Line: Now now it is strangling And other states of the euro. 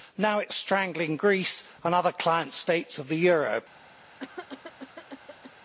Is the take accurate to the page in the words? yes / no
no